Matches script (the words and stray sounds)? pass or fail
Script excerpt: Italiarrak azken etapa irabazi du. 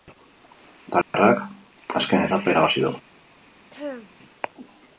fail